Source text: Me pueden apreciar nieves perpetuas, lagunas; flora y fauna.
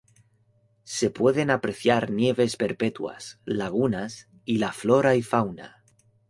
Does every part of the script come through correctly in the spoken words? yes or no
no